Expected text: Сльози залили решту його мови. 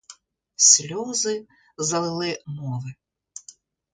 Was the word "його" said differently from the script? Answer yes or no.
yes